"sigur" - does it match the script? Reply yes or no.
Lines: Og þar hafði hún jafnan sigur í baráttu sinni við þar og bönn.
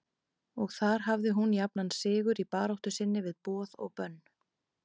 yes